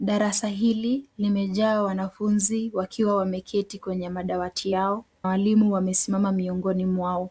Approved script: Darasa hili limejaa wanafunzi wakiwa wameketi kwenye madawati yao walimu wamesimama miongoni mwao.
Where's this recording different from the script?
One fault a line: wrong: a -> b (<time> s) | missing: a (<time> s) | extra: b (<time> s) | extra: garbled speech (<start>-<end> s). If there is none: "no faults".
no faults